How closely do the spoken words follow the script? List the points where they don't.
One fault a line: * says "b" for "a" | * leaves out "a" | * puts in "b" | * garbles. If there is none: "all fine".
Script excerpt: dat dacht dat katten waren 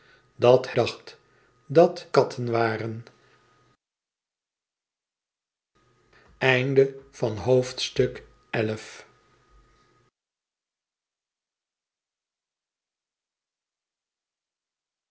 all fine